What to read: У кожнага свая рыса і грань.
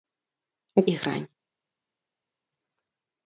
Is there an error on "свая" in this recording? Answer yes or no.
yes